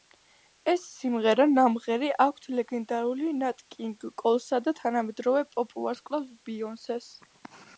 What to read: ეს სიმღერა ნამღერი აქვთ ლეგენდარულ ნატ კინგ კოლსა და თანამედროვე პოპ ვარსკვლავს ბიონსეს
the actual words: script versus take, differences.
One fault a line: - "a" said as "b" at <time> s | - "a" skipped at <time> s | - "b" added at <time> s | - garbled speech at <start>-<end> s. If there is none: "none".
none